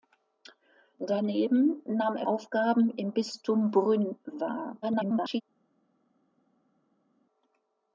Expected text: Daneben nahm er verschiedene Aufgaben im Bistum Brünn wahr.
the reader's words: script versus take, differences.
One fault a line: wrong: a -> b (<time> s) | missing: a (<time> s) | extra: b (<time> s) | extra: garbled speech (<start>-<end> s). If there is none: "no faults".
missing: verschiedene (2.2 s)
extra: garbled speech (4.8-5.4 s)